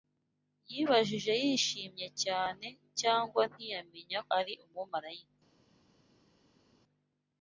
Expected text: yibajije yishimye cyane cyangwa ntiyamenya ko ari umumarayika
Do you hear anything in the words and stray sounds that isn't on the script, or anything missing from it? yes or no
yes